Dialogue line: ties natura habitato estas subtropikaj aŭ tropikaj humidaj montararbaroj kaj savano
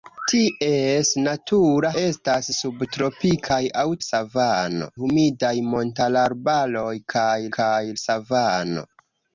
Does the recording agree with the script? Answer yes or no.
no